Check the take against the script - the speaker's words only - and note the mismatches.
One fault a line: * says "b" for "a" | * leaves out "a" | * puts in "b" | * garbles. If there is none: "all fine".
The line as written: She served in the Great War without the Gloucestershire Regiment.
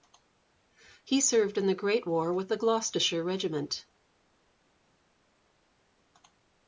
* says "He" for "She"
* says "with" for "without"